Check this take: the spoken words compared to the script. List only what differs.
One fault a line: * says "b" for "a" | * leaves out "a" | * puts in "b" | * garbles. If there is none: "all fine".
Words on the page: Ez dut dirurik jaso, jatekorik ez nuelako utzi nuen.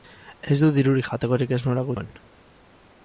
* leaves out "jaso"
* leaves out "utzi"